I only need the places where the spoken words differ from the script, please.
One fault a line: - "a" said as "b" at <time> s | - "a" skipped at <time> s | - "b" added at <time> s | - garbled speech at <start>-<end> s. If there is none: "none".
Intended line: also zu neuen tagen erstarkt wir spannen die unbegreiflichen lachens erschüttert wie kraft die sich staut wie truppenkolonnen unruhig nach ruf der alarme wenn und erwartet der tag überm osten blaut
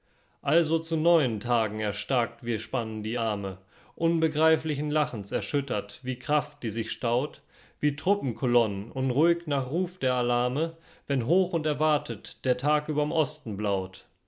- "arme" added at 3.2 s
- "hoch" added at 11.3 s